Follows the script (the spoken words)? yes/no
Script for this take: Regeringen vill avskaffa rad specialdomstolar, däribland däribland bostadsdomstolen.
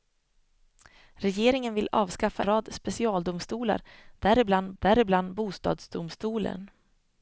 yes